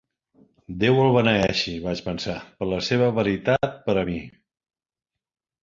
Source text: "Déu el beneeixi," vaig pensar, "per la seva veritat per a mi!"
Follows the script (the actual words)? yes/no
yes